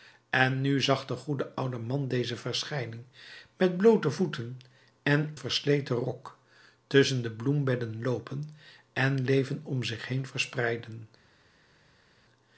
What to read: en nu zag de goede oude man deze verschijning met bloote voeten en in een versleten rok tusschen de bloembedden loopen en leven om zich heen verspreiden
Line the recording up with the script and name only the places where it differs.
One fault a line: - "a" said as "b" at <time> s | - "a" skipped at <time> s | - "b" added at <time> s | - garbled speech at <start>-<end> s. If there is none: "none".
- "in een" skipped at 5.3 s